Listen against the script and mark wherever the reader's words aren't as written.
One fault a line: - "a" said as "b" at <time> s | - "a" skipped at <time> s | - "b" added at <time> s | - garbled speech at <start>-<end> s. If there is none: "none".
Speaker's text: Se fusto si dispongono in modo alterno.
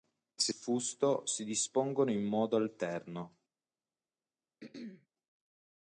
none